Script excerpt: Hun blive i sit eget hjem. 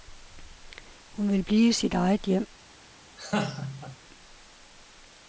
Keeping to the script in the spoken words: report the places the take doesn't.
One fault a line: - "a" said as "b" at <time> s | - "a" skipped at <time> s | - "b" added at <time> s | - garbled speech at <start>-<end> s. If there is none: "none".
- "vil" added at 1.3 s